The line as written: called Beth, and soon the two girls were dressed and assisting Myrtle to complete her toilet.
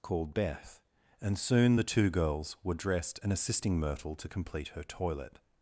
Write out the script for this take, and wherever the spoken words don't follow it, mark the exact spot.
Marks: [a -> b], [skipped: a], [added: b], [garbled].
called Beth, and soon the two girls were dressed and assisting Myrtle to complete her toilet.